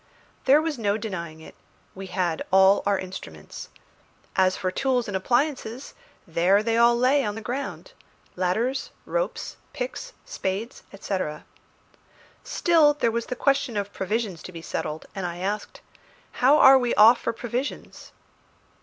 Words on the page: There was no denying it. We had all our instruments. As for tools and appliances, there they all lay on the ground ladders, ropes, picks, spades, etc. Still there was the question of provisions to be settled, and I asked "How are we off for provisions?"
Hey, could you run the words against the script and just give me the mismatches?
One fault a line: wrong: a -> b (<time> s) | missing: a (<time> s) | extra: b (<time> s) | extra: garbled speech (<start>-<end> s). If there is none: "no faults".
no faults